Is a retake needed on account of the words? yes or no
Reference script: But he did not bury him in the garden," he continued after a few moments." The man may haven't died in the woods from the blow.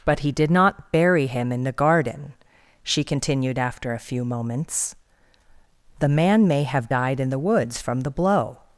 yes